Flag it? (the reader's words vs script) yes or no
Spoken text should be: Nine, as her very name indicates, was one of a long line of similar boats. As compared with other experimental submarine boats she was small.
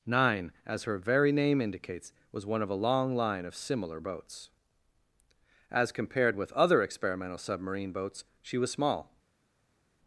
no